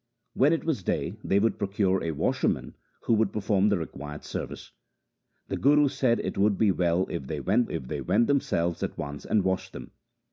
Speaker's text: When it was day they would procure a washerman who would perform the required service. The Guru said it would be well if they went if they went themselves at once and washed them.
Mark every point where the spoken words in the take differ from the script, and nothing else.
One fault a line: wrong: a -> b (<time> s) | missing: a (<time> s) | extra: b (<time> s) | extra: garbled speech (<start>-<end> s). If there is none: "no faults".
no faults